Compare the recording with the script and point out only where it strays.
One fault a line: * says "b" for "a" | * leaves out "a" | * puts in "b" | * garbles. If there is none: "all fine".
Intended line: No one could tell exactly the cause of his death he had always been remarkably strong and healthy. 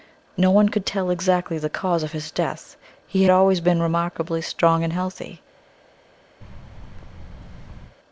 * leaves out "had"